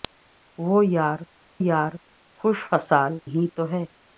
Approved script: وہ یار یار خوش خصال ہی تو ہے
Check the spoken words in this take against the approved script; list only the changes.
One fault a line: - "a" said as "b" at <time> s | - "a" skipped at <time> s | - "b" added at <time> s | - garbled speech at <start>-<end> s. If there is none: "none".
none